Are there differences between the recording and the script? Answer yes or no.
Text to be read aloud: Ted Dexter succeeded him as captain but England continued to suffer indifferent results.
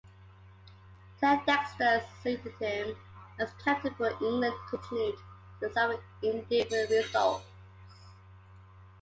no